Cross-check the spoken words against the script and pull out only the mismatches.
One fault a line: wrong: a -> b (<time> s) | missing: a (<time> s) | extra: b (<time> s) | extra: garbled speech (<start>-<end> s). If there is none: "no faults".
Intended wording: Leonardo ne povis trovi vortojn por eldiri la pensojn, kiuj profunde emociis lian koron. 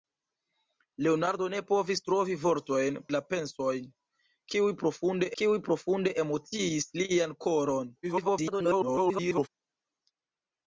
wrong: por eldiri la pensojn -> la pensojn kiuj profunde (3.1 s)
extra: garbled speech (8.0-9.5 s)